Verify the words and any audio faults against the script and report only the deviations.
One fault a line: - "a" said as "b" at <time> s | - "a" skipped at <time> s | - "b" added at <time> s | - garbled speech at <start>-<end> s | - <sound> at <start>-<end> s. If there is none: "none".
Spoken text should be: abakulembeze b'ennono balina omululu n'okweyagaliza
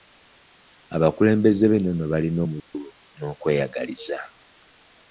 - dropout at 2.6-2.7 s